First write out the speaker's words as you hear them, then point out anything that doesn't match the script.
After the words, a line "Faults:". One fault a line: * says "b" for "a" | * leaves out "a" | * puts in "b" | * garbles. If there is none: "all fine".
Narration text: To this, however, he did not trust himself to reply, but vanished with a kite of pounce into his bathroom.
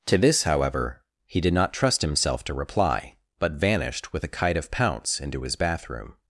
To this, however, he did not trust himself to reply, but vanished with a kite of pounce into his bathroom.
Faults:
all fine